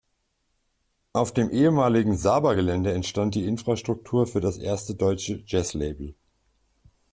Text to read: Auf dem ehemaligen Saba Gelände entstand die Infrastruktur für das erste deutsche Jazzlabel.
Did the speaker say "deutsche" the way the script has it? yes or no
yes